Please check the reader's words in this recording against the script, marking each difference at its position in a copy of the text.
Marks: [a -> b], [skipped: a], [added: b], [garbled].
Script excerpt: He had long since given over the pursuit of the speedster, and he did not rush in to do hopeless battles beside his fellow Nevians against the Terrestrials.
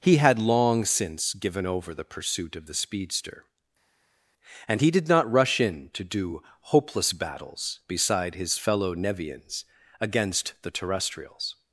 He had long since given over the pursuit of the speedster, and he did not rush in to do hopeless battles beside his fellow Nevians against the Terrestrials.